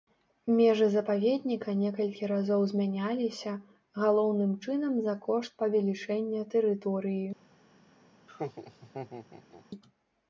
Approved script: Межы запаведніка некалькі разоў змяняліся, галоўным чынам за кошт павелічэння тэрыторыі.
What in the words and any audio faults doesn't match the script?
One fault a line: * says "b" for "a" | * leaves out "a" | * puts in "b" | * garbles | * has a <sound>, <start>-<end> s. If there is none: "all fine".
* has a laugh, 8.3-9.7 s